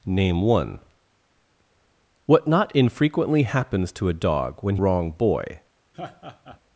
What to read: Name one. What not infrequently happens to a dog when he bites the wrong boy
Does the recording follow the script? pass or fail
fail